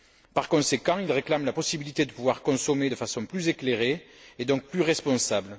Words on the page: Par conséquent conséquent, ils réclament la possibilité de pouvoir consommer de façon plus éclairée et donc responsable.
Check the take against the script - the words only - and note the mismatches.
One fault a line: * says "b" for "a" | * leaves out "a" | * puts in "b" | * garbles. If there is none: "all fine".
* leaves out "conséquent"
* puts in "plus"